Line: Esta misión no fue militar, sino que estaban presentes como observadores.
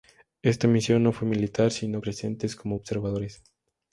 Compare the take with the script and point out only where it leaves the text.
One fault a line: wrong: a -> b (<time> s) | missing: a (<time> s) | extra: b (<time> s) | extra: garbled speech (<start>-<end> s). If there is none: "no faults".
missing: que estaban (2.0 s)